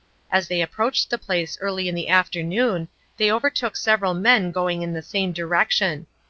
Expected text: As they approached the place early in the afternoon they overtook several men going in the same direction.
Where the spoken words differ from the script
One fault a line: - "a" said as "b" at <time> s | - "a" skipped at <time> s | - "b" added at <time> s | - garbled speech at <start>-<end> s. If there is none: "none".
none